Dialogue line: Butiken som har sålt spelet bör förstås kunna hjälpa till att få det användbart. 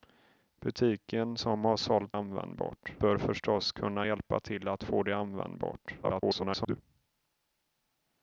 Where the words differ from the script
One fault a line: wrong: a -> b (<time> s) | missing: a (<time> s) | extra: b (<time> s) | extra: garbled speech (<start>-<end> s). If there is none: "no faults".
wrong: spelet -> användbart (2.1 s)
extra: garbled speech (6.0-6.8 s)